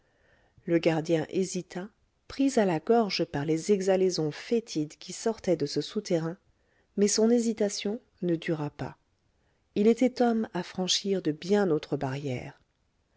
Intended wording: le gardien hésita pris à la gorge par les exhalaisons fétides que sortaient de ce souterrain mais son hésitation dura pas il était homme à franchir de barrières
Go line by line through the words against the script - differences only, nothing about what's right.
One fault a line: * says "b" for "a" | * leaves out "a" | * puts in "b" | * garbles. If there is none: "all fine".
* says "qui" for "que"
* puts in "ne"
* puts in "bien autres"